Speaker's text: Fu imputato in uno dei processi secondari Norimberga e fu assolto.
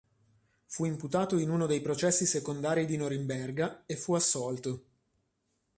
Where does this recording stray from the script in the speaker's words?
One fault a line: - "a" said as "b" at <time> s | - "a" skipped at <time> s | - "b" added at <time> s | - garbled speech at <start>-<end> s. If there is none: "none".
- "di" added at 2.9 s